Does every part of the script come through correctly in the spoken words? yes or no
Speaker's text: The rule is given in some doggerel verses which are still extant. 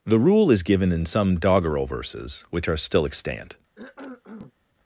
yes